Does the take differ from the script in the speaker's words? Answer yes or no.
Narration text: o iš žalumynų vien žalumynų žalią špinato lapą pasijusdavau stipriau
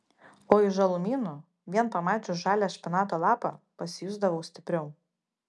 yes